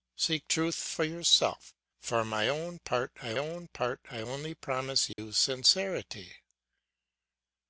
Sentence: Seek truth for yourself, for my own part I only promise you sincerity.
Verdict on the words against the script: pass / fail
fail